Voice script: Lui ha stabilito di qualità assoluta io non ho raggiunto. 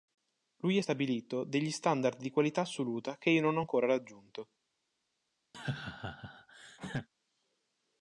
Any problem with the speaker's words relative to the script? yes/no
yes